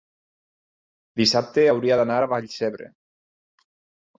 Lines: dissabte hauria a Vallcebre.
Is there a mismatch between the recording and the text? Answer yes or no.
yes